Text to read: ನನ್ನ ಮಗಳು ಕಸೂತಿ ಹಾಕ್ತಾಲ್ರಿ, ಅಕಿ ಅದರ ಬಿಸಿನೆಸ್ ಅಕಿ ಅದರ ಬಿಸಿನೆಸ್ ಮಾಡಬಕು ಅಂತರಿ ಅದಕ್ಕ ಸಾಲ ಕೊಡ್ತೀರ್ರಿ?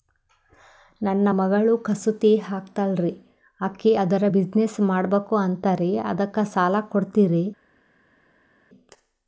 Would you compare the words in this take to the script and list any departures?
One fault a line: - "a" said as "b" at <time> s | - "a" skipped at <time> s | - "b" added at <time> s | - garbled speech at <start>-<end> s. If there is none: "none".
- "ಅಕಿ ಅದರ ಬಿಸಿನೆಸ್" skipped at 4.8 s